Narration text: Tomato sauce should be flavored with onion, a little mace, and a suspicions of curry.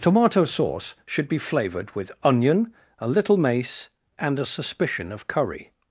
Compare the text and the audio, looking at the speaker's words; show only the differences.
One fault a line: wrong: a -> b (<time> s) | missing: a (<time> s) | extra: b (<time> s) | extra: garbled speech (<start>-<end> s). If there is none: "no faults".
wrong: suspicions -> suspicion (4.5 s)